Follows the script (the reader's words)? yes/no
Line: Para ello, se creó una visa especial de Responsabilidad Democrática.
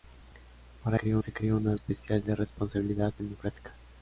no